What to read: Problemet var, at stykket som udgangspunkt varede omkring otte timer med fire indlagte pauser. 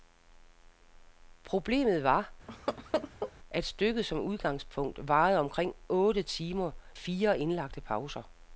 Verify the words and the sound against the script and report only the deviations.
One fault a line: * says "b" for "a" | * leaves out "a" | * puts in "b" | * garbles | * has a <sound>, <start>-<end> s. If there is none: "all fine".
* has a laugh, 2.5-3.3 s
* leaves out "med"